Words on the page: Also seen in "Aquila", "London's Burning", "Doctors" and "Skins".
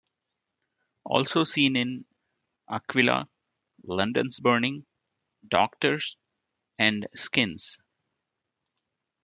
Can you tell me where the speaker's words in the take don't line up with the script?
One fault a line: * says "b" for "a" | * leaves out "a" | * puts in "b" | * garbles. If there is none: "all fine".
all fine